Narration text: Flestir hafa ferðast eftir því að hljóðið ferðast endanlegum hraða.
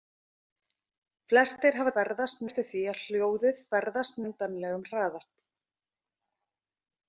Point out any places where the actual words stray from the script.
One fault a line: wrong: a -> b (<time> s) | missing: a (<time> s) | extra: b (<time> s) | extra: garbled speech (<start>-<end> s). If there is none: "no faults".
no faults